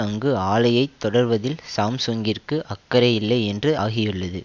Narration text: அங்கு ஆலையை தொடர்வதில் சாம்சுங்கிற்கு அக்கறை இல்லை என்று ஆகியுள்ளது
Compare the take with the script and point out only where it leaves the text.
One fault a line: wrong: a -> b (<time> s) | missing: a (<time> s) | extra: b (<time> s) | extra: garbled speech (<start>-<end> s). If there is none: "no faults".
no faults